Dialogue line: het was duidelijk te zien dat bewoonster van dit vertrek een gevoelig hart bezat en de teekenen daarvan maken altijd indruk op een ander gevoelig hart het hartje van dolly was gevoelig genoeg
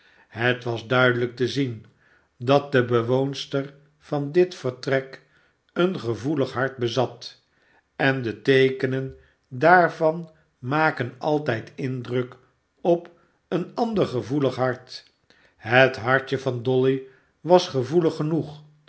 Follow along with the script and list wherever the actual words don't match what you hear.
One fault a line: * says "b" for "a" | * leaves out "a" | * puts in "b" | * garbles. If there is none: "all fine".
* puts in "de"